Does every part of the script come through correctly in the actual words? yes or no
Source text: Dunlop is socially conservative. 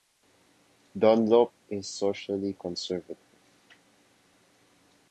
yes